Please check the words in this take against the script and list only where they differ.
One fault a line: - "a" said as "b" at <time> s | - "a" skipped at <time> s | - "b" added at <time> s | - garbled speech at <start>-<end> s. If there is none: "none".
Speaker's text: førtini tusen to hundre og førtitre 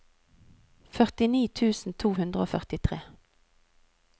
none